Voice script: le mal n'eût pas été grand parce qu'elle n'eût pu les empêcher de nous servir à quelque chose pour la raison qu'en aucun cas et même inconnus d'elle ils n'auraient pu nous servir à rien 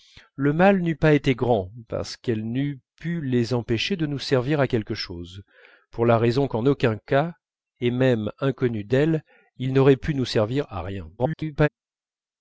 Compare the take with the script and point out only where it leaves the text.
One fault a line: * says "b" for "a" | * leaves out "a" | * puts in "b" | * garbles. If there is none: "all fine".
* garbles